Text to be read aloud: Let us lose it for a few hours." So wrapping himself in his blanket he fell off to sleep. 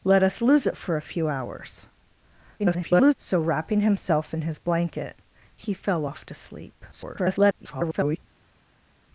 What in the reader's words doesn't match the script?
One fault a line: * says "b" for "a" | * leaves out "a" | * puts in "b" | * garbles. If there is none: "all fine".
* garbles
* garbles